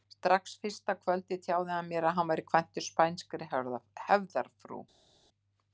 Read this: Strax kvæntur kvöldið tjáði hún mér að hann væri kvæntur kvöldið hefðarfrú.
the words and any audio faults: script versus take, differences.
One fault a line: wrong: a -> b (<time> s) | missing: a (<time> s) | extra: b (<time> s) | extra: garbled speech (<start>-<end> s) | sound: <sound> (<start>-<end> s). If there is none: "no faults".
wrong: kvæntur -> fyrsta (0.6 s)
wrong: hún -> hann (1.8 s)
wrong: kvöldið -> spænskri (2.9 s)